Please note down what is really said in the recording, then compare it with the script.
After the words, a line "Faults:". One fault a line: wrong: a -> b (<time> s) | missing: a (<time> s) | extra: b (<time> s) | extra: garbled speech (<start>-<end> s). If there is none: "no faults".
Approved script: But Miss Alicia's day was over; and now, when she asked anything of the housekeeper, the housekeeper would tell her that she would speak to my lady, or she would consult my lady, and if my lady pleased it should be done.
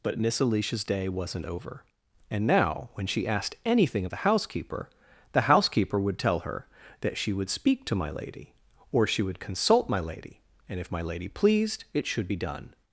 But Miss Alicia's day wasn't over; and now, when she asked anything of the housekeeper, the housekeeper would tell her that she would speak to my lady, or she would consult my lady, and if my lady pleased it should be done.
Faults:
wrong: was -> wasn't (1.1 s)